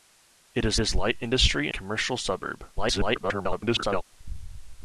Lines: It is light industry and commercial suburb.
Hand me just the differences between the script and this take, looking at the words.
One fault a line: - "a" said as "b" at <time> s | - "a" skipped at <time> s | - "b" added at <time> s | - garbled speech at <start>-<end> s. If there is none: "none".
- "is" added at 0.8 s
- "and" skipped at 1.7 s
- garbled speech at 2.8-4.0 s